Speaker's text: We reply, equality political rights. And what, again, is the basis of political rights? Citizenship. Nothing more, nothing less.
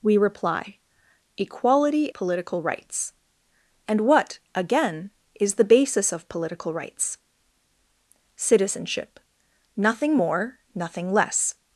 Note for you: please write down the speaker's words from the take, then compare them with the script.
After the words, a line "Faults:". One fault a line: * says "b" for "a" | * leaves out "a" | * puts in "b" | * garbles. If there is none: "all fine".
We reply, equality political rights. And what, again, is the basis of political rights? Citizenship. Nothing more, nothing less.
Faults:
all fine